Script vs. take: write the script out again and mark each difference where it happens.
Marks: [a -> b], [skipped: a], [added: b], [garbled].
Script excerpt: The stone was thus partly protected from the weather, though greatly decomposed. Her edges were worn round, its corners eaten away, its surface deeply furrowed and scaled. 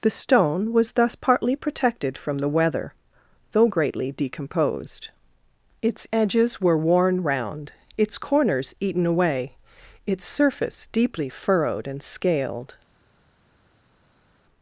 The stone was thus partly protected from the weather, though greatly decomposed. [Her -> Its] edges were worn round, its corners eaten away, its surface deeply furrowed and scaled.